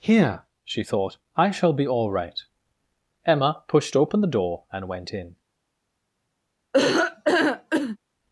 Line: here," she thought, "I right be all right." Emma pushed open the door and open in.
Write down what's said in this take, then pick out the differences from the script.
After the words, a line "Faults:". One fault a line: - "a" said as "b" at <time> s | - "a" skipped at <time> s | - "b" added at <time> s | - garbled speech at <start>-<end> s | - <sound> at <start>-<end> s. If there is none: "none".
here," she thought, "I shall be all right." Emma pushed open the door and went in.
Faults:
- "right" said as "shall" at 1.5 s
- "open" said as "went" at 4.9 s
- laugh at 6.7-8.0 s